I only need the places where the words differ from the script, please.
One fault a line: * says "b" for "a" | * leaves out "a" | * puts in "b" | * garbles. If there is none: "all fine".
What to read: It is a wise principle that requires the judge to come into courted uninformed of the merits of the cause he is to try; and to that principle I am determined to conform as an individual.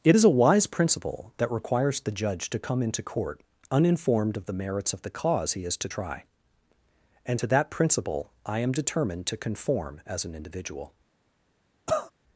* says "court" for "courted"